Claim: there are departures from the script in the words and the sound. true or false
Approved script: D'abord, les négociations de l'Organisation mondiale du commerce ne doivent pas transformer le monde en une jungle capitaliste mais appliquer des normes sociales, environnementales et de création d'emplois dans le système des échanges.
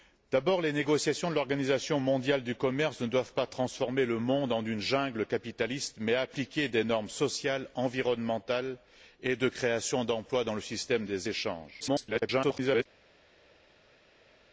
true